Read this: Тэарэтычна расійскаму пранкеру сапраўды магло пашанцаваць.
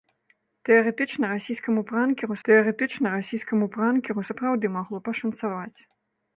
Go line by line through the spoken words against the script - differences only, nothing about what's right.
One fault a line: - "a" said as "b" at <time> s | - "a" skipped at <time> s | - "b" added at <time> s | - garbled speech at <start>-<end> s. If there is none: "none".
- "тэарэтычна расійскаму пранкеру" added at 2.5 s